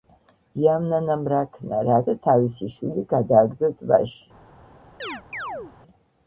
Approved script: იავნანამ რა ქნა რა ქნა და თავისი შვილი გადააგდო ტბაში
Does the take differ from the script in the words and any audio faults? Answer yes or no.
yes